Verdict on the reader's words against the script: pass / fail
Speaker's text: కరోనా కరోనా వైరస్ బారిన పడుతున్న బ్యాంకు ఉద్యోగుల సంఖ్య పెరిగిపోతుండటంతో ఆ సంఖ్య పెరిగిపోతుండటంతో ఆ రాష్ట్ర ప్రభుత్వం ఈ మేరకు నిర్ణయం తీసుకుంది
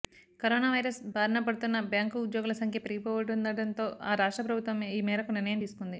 fail